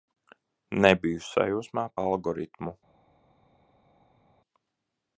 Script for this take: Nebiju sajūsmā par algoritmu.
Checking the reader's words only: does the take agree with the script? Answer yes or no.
no